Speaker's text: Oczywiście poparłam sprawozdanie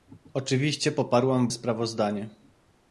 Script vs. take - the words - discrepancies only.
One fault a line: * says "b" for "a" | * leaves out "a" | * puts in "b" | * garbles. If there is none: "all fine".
all fine